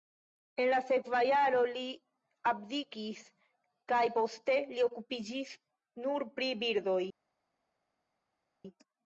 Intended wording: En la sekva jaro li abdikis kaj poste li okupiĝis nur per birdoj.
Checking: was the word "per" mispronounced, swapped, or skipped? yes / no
yes